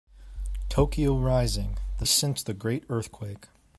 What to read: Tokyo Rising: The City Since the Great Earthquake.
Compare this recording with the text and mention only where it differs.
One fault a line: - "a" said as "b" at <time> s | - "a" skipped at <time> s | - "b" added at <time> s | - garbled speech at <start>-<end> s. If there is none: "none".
- "City" skipped at 2.0 s